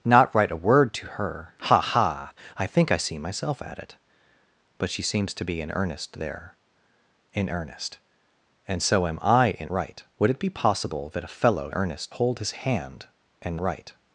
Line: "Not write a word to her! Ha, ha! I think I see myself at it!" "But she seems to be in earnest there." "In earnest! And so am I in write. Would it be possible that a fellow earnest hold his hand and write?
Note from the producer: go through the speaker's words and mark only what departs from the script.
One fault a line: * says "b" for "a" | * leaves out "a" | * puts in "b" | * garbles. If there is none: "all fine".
all fine